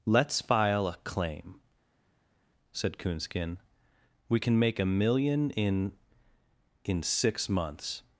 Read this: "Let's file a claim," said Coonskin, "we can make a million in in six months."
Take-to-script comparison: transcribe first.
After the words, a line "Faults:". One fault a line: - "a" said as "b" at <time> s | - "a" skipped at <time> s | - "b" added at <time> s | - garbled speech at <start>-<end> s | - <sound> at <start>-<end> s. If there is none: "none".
"Let's file a claim," said Coonskin, "we can make a million in in six months."
Faults:
none